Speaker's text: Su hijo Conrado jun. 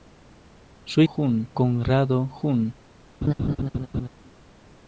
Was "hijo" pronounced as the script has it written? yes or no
no